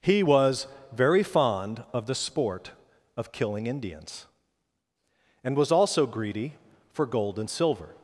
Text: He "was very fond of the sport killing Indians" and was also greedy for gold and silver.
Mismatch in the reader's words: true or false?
true